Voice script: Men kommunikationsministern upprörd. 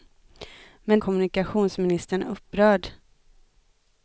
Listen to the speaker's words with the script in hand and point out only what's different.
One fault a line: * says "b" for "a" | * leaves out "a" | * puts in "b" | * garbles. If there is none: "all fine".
all fine